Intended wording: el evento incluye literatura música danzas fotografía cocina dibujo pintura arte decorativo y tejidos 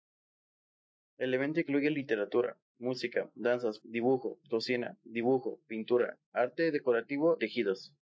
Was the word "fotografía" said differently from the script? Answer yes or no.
yes